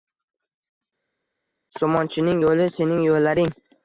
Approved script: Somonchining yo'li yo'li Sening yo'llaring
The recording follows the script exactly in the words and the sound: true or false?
false